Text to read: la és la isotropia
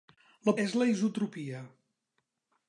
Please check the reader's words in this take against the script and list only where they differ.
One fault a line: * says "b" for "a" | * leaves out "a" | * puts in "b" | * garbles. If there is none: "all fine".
all fine